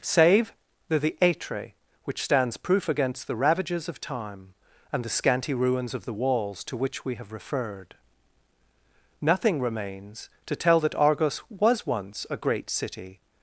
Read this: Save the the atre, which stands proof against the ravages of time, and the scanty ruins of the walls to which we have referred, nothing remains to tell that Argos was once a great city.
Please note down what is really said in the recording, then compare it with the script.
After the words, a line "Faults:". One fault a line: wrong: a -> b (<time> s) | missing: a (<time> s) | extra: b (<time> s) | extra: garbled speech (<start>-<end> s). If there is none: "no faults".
Save the the atre, which stands proof against the ravages of time, and the scanty ruins of the walls to which we have referred, nothing remains to tell that Argos was once a great city.
Faults:
no faults